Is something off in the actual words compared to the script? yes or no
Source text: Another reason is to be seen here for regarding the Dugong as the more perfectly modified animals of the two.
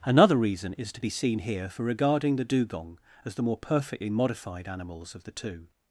no